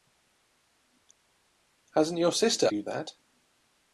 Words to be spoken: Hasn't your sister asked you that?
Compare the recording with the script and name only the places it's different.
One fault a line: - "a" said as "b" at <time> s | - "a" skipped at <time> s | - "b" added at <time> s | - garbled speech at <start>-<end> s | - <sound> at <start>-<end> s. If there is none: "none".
- "asked" skipped at 2.7 s